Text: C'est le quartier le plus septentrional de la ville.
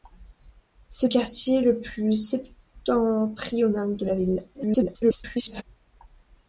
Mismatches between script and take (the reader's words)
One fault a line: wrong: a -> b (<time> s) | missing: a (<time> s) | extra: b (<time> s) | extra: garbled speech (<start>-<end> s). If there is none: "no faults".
missing: le (1.1 s)
extra: garbled speech (4.5-5.6 s)